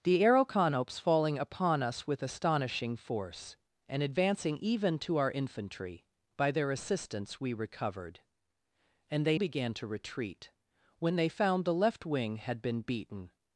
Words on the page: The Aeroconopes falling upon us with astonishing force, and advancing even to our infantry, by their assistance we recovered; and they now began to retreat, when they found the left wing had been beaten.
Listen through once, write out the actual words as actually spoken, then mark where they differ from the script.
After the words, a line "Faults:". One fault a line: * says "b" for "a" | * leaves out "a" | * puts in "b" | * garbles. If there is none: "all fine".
The Aeroconopes falling upon us with astonishing force, and advancing even to our infantry, by their assistance we recovered; and they began to retreat, when they found the left wing had been beaten.
Faults:
* leaves out "now"